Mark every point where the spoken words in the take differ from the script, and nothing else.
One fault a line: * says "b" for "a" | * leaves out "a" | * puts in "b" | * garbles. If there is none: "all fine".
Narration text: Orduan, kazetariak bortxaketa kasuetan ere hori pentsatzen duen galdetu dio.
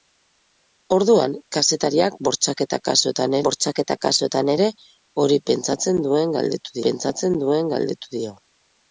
* puts in "bortxaketa kasuetan"
* puts in "pentsatzen duen galdetu"